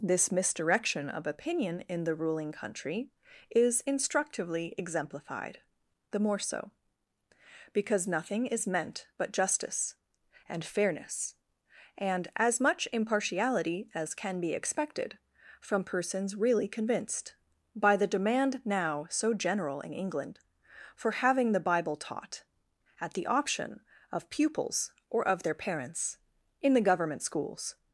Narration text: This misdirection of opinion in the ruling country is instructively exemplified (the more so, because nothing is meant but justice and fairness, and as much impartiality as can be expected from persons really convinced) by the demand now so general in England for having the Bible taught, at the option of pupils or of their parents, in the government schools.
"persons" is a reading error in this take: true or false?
false